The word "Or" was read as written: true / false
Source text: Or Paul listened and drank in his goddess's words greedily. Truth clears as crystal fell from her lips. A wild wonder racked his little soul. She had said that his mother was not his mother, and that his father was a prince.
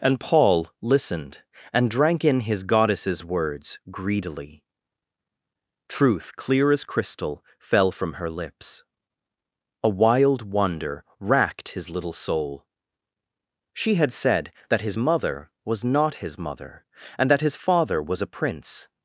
false